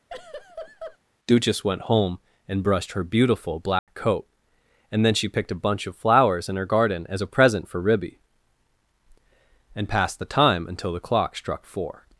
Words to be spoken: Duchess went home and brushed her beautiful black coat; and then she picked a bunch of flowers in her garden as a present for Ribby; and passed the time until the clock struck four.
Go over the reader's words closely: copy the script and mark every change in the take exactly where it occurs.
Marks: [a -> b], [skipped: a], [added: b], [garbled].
Duchess went home and brushed her beautiful black coat; and then she picked a bunch of flowers in her garden as a present for Ribby; and passed the time until the clock struck four.